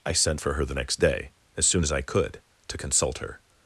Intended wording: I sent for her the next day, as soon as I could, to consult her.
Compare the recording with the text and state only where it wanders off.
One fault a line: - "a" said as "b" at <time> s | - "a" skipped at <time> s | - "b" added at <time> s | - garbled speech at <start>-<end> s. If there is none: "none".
none